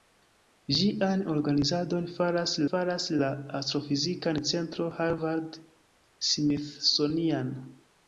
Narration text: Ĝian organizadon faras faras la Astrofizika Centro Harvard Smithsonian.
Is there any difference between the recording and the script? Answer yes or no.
no